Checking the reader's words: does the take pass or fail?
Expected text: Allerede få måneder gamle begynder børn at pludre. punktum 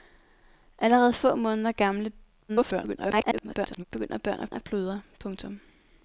fail